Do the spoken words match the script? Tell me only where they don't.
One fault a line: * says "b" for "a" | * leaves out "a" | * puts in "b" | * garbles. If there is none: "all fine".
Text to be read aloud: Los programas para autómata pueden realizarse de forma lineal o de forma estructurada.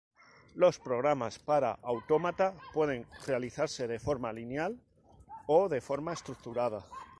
all fine